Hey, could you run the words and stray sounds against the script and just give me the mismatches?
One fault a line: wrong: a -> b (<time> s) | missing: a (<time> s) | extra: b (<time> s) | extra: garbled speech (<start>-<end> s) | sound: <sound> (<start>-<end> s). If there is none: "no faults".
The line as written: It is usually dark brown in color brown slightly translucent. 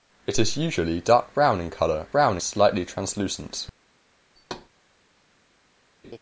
sound: thud (4.4-4.7 s)
sound: laugh (6.0-6.2 s)